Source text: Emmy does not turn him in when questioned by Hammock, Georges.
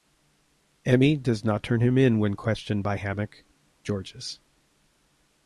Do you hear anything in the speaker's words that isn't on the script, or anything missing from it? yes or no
no